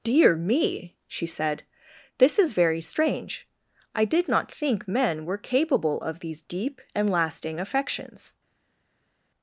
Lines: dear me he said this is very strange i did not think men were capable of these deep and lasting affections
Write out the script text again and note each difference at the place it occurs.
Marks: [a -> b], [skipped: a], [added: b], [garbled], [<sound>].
dear me [he -> she] said this is very strange i did not think men were capable of these deep and lasting affections